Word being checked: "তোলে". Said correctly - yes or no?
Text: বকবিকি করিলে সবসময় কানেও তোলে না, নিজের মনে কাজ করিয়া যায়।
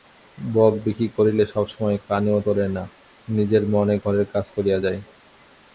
yes